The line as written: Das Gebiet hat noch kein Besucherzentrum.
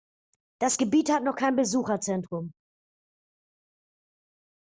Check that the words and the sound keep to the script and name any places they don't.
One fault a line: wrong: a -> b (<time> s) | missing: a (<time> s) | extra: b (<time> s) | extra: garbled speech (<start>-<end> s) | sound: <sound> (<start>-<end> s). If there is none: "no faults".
no faults